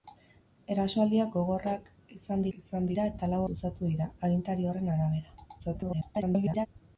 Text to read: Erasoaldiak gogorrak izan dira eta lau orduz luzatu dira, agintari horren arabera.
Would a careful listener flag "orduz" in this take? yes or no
yes